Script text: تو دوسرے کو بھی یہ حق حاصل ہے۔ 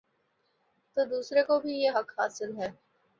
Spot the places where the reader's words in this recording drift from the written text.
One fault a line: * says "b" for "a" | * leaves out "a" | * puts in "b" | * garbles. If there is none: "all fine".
all fine